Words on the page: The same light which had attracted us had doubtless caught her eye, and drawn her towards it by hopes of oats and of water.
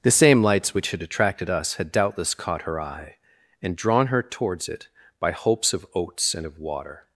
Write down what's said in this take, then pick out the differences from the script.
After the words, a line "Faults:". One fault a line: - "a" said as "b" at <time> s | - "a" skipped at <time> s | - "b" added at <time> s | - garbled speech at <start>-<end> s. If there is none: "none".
The same lights which had attracted us had doubtless caught her eye, and drawn her towards it by hopes of oats and of water.
Faults:
- "light" said as "lights" at 0.4 s